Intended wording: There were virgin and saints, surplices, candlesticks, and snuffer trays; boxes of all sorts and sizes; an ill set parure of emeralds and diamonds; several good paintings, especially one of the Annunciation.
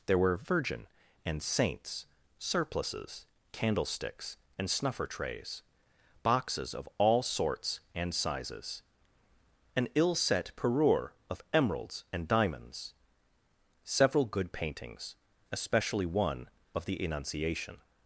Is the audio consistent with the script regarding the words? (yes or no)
yes